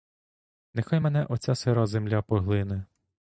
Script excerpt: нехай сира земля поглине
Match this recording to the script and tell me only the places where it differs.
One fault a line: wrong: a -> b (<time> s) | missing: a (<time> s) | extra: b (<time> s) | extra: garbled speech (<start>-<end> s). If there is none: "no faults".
extra: мене оця (1.0 s)